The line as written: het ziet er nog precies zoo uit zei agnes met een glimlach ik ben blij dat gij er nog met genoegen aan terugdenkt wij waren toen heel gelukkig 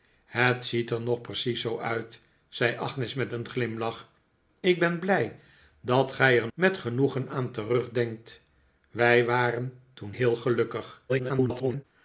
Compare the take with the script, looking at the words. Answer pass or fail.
fail